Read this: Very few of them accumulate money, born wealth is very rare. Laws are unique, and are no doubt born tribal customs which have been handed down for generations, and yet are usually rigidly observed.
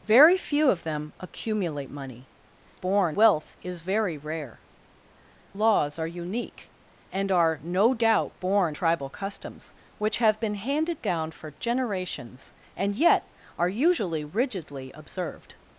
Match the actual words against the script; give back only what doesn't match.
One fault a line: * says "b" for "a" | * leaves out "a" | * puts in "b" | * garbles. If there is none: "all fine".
all fine